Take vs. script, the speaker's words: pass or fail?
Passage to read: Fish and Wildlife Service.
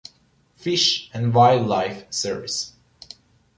pass